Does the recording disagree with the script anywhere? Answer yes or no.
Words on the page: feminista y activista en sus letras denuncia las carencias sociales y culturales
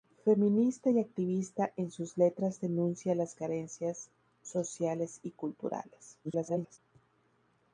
yes